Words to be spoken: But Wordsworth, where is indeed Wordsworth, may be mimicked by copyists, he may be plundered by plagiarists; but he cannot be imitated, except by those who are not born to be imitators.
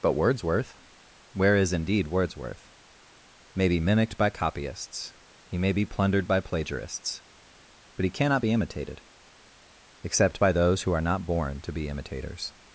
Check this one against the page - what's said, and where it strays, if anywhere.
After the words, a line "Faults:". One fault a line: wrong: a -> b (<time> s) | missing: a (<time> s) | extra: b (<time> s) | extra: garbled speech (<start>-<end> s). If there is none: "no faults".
But Wordsworth, where is indeed Wordsworth, may be mimicked by copyists, he may be plundered by plagiarists; but he cannot be imitated, except by those who are not born to be imitators.
Faults:
no faults